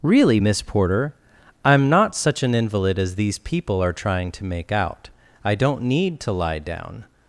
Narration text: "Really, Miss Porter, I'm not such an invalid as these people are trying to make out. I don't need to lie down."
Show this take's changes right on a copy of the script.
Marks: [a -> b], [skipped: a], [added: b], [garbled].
"Really, Miss Porter, I'm not such an invalid as these people are trying to make out. I don't need to lie down."